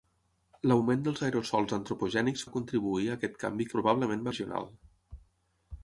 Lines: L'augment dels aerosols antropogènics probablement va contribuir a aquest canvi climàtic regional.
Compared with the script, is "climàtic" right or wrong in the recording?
wrong